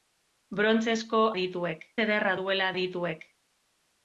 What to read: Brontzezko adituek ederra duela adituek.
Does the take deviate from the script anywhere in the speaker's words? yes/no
no